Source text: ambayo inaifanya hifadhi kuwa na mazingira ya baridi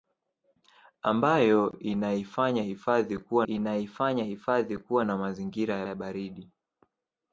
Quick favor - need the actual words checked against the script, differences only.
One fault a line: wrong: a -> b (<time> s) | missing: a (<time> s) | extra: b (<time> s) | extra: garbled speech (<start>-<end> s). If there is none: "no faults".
extra: inaifanya hifadhi kuwa (3.4 s)
extra: ya (5.8 s)